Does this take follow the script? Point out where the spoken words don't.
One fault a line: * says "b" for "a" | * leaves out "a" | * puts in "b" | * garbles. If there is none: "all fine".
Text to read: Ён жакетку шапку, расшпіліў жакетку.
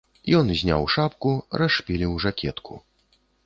* says "зняў" for "жакетку"